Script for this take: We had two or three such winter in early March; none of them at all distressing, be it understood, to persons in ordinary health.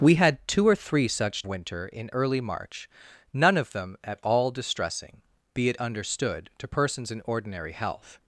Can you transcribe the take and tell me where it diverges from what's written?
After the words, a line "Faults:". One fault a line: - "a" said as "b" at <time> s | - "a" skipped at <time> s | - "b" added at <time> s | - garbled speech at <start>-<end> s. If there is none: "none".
We had two or three such winter in early March; none of them at all distressing, be it understood, to persons in ordinary health.
Faults:
none